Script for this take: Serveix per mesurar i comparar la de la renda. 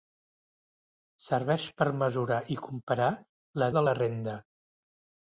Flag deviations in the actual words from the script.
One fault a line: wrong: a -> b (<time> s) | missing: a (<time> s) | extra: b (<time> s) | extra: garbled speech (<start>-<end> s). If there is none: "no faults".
no faults